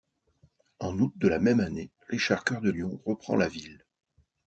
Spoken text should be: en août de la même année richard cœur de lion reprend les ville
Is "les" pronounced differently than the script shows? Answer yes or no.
yes